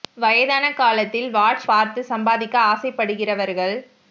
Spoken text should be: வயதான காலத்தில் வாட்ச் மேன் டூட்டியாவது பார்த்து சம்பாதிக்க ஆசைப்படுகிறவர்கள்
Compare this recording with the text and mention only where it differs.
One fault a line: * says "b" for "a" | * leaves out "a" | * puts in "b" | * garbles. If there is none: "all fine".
* leaves out "மேன் டூட்டியாவது"